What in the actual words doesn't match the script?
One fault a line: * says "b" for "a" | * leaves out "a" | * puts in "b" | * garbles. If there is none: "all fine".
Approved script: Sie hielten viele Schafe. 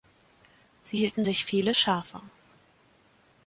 * puts in "sich"